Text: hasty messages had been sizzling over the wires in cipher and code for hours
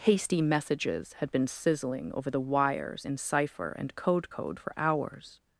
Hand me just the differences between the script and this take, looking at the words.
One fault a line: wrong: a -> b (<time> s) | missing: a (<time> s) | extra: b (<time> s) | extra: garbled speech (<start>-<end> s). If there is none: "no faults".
extra: code (4.3 s)